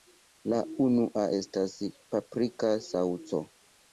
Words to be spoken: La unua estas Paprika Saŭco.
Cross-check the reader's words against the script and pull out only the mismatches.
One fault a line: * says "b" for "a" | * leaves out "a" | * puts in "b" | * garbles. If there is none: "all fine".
all fine